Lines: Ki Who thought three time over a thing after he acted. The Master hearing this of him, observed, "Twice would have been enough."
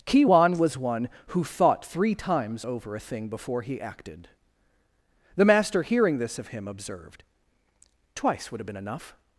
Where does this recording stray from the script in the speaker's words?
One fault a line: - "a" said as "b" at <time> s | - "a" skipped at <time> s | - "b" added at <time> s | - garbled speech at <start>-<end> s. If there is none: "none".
- "Wan was one" added at 0.2 s
- "time" said as "times" at 2.2 s
- "after" said as "before" at 3.3 s